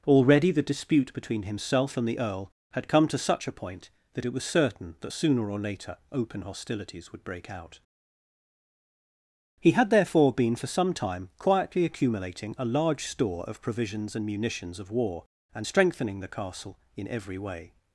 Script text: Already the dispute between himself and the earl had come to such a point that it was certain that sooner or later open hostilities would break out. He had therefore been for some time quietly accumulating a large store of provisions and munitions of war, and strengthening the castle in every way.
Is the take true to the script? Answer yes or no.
yes